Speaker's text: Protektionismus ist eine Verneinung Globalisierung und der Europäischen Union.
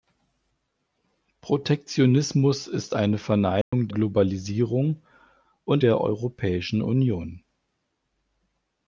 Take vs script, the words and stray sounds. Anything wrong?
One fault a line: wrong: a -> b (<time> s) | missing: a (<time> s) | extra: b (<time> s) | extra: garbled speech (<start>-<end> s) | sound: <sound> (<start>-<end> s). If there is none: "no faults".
sound: dropout (3.6-3.7 s)